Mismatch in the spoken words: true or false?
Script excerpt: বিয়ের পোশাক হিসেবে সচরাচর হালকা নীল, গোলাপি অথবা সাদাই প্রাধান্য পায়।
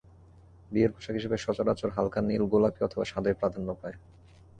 false